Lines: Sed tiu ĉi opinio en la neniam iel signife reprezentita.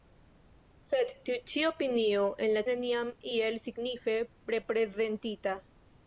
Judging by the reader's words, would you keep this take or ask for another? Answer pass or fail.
pass